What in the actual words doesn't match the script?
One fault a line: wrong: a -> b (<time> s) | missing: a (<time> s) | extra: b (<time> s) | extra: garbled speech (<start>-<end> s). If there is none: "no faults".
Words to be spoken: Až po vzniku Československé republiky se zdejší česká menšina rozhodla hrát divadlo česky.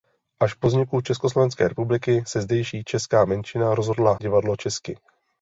missing: hrát (4.2 s)